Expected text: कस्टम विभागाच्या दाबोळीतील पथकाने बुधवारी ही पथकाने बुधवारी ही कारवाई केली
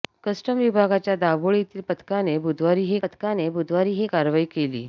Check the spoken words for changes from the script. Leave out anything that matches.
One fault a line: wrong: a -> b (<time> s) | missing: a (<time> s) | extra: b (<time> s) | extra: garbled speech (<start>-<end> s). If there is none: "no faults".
no faults